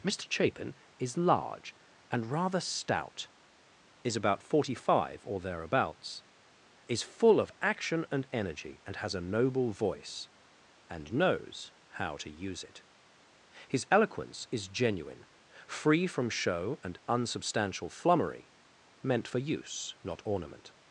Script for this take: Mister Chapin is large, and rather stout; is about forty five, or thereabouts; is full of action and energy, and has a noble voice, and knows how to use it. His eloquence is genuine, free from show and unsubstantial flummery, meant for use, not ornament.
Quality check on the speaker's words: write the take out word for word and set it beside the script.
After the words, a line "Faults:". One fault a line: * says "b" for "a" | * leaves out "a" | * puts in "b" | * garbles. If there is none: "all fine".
Mister Chapin is large, and rather stout; is about forty five, or thereabouts; is full of action and energy, and has a noble voice, and knows how to use it. His eloquence is genuine, free from show and unsubstantial flummery, meant for use, not ornament.
Faults:
all fine